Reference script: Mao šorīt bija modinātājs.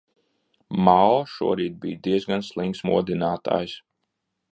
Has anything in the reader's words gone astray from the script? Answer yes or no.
yes